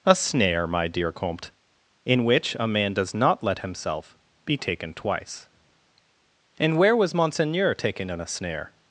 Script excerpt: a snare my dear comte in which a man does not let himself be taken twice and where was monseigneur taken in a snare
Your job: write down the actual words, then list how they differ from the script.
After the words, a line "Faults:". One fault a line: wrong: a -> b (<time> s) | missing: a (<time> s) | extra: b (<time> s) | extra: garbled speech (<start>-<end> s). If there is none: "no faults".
a snare my dear comte in which a man does not let himself be taken twice and where was monseigneur taken in a snare
Faults:
no faults